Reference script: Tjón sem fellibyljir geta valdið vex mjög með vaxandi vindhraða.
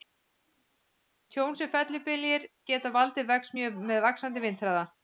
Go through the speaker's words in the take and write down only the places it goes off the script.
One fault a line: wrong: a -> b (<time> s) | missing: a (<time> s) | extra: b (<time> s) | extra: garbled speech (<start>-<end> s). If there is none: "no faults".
no faults